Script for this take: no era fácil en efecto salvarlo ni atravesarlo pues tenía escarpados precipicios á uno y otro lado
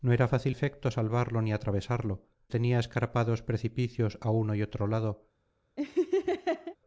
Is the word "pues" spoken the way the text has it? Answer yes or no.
no